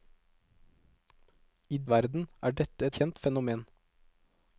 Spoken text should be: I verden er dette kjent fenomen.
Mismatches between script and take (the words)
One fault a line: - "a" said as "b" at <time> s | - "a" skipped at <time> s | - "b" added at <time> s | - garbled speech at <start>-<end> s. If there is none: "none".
none